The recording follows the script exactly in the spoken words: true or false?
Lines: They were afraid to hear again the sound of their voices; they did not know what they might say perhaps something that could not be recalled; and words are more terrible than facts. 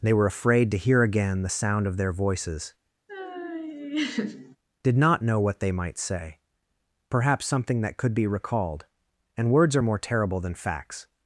false